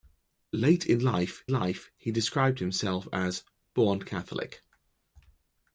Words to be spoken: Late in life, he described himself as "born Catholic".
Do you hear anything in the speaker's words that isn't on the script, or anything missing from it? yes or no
yes